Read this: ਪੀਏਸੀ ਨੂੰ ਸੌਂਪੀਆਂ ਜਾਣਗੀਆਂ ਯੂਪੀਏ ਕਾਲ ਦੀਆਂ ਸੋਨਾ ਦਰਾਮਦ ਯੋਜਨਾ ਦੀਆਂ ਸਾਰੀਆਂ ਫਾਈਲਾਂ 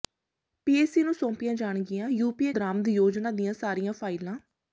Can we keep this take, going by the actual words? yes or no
no